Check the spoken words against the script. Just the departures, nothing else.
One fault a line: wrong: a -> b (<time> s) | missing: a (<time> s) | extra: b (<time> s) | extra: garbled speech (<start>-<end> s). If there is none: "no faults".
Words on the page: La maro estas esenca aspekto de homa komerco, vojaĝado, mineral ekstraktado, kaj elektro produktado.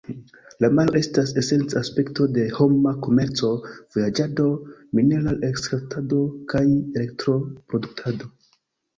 no faults